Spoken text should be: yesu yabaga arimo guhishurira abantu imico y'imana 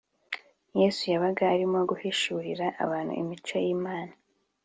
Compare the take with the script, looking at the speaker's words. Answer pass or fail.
pass